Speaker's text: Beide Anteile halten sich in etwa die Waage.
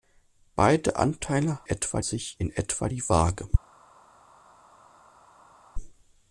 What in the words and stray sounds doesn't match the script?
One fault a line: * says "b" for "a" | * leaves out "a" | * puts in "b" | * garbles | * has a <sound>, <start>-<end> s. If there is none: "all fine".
* says "etwa" for "halten"